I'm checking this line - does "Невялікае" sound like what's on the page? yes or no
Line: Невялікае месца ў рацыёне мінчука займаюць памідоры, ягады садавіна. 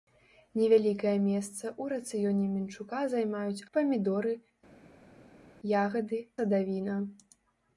yes